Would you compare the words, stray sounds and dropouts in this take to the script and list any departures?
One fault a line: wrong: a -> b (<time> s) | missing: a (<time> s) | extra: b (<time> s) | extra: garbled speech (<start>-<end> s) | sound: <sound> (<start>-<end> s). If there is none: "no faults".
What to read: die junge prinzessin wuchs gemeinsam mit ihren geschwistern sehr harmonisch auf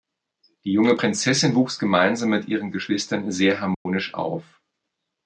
sound: dropout (3.7-3.9 s)